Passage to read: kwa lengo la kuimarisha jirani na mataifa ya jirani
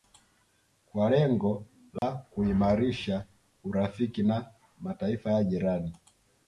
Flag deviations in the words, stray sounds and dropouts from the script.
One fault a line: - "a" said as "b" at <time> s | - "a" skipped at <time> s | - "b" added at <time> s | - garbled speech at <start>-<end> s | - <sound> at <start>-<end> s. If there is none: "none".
- dropout at 2.0-2.0 s
- "jirani" said as "urafiki" at 3.6 s